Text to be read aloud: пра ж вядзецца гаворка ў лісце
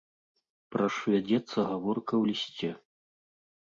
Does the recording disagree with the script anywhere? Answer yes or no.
no